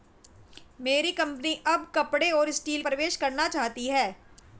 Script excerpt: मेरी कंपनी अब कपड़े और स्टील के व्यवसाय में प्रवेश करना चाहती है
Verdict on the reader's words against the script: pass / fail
fail